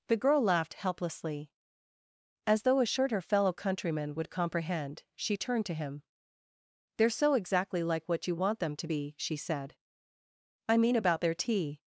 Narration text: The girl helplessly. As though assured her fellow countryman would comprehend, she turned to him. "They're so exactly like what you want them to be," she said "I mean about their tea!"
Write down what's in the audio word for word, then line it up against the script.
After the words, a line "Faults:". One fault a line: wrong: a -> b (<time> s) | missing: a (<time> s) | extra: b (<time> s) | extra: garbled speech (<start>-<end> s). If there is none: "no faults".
The girl laughed helplessly. As though assured her fellow countryman would comprehend, she turned to him. "They're so exactly like what you want them to be," she said "I mean about their tea!"
Faults:
extra: laughed (0.4 s)